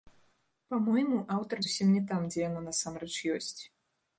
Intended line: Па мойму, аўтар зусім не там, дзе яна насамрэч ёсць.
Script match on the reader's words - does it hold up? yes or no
yes